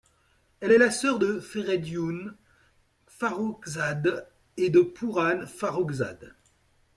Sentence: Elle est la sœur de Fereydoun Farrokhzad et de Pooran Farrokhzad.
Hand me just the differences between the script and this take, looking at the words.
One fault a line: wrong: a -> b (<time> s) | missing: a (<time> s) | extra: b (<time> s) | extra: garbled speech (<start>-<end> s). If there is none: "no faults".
no faults